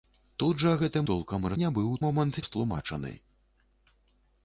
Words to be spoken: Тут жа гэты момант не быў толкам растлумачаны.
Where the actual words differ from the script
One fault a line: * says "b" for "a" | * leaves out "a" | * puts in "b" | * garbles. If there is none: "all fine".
* says "толкам" for "момант"
* says "момант" for "толкам"